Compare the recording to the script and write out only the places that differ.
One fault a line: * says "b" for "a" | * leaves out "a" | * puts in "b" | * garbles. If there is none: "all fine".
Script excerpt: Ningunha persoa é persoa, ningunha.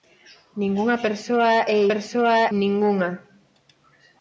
all fine